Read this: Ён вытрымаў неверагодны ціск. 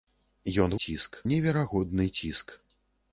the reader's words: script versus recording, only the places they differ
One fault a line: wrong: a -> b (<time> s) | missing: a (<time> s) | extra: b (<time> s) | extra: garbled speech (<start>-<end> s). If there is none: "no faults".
wrong: вытрымаў -> ціск (0.9 s)